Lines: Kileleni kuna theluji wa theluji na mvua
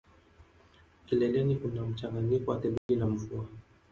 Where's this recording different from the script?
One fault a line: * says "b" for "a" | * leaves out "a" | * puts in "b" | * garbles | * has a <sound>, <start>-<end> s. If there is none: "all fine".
* says "mchanganyiko" for "theluji"
* has a dropout, 2.8-2.9 s